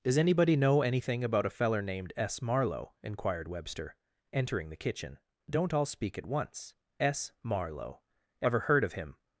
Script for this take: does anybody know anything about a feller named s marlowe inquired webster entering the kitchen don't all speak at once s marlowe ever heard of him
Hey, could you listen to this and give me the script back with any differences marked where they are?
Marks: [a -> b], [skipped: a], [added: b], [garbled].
does anybody know anything about a feller named s marlowe inquired webster entering the kitchen don't all speak at once s marlowe ever heard of him